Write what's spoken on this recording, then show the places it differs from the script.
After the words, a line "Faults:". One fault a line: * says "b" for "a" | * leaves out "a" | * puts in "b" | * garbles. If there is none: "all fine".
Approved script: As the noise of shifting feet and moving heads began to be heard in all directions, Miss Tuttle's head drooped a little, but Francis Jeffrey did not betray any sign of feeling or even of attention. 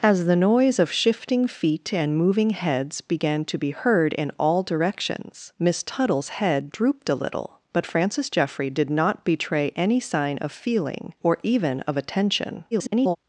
As the noise of shifting feet and moving heads began to be heard in all directions, Miss Tuttle's head drooped a little, but Francis Jeffrey did not betray any sign of feeling or even of attention. [garbled]
Faults:
* garbles